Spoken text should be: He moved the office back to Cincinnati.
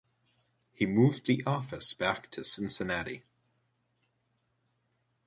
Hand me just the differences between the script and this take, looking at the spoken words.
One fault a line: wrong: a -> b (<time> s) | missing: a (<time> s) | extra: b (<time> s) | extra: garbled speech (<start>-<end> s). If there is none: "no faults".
no faults